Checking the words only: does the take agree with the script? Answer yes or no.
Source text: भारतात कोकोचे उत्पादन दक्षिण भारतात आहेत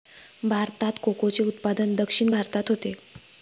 no